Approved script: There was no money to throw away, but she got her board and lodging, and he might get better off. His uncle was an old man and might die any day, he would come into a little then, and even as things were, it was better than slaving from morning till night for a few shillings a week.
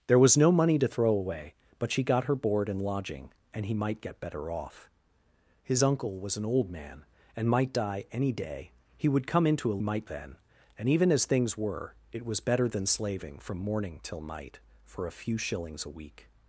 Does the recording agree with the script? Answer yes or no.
no